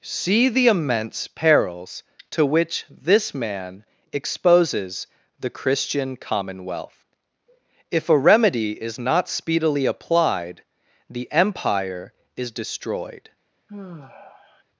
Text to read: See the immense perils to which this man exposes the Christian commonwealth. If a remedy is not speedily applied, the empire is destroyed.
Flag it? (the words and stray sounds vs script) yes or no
yes